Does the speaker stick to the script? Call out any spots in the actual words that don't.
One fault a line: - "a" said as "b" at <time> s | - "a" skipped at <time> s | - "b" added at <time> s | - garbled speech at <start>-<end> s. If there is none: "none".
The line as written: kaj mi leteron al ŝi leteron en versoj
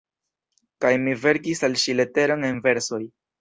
- "leteron" said as "verkis" at 1.3 s